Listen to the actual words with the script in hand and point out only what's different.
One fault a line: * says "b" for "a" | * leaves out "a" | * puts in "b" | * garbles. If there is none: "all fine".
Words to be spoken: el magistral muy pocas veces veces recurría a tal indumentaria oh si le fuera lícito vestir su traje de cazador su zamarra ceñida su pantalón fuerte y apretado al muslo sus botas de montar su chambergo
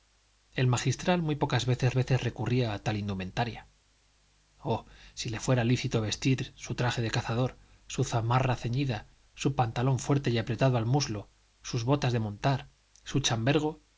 all fine